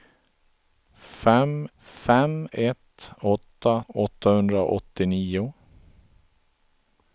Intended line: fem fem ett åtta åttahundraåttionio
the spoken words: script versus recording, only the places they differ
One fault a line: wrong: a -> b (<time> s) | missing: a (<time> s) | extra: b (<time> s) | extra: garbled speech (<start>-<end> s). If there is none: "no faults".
no faults